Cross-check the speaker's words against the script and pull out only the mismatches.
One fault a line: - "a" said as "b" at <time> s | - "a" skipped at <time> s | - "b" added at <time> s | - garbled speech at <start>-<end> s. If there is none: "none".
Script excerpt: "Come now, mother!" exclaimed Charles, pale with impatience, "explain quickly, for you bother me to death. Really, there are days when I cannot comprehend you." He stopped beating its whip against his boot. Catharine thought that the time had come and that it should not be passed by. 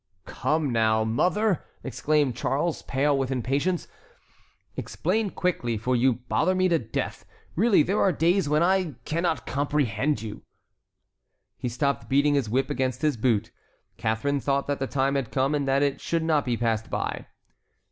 - "its" said as "his" at 12.3 s